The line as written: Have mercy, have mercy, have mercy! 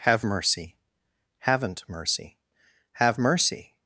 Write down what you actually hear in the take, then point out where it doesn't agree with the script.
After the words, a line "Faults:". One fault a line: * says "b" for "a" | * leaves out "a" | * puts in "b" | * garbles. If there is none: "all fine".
Have mercy, haven't mercy, have mercy!
Faults:
* says "haven't" for "have"